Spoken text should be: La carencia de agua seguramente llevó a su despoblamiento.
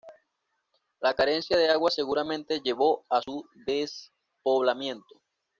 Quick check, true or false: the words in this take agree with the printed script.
true